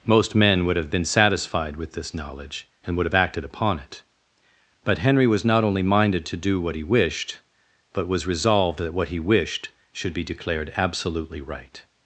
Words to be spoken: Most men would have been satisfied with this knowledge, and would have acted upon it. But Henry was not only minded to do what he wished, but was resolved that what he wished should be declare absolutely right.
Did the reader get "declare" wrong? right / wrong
wrong